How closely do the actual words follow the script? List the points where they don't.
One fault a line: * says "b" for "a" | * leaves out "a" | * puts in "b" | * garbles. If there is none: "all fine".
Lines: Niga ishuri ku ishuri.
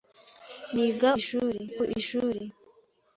all fine